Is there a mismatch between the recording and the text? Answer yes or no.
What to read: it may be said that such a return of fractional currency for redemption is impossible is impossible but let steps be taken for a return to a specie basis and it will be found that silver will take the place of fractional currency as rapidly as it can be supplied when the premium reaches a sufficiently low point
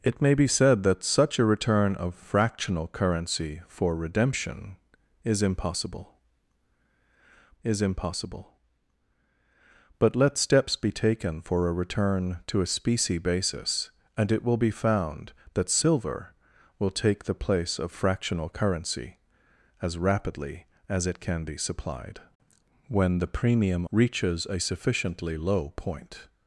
no